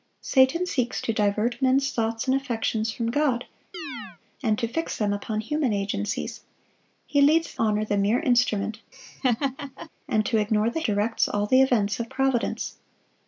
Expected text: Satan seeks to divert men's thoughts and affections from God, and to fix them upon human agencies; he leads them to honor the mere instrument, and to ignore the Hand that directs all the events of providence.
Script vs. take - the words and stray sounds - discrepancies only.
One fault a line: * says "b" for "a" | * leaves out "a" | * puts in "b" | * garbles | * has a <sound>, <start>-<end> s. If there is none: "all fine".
* has a chirp, 3.7-4.2 s
* leaves out "them to"
* has a laugh, 8.9-9.9 s
* leaves out "Hand that"